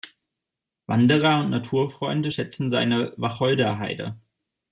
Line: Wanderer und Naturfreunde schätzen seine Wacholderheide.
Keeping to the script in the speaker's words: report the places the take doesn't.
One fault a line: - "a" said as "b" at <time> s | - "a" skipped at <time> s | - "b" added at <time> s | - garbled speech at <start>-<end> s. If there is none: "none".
none